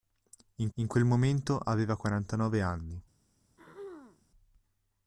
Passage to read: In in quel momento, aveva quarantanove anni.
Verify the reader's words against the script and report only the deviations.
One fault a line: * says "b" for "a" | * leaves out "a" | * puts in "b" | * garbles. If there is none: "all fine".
all fine